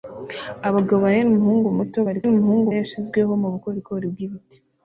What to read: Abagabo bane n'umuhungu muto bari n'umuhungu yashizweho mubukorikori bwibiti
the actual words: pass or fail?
pass